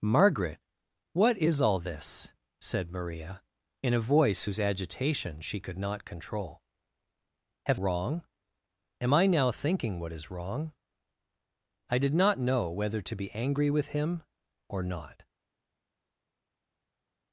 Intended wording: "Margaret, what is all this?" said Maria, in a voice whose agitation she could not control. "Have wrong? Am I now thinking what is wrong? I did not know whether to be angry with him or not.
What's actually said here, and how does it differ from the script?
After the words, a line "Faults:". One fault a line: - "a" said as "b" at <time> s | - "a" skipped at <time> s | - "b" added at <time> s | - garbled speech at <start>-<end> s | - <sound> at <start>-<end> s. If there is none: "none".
"Margaret, what is all this?" said Maria, in a voice whose agitation she could not control. "Have wrong? Am I now thinking what is wrong? I did not know whether to be angry with him or not.
Faults:
none